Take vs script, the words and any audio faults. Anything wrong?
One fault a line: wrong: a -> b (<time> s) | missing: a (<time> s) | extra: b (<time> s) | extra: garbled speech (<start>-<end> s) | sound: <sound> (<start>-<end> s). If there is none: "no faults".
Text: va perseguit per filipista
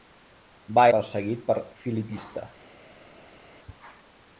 no faults